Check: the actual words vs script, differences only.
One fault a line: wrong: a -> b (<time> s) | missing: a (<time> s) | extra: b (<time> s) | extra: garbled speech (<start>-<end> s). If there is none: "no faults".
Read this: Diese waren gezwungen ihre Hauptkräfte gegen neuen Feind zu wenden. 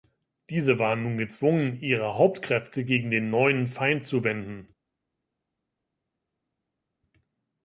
extra: nun (1.0 s)
extra: den (3.1 s)